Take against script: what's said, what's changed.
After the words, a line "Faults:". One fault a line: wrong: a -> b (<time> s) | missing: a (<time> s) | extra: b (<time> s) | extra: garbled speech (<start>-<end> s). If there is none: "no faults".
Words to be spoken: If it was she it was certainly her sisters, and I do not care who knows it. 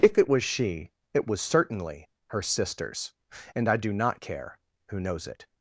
If it was she it was certainly her sisters, and I do not care who knows it.
Faults:
no faults